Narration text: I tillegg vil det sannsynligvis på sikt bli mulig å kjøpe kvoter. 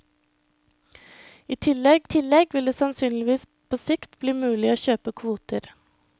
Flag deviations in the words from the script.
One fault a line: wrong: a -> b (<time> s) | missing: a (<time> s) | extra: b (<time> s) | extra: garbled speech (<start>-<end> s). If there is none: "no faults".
extra: tillegg (2.1 s)